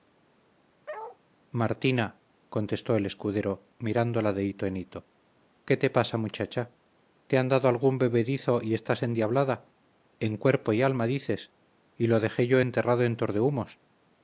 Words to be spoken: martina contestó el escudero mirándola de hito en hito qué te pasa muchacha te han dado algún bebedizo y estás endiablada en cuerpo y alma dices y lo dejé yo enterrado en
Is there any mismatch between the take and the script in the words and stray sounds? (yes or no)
yes